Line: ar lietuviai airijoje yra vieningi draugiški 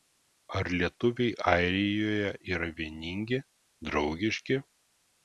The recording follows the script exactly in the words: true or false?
true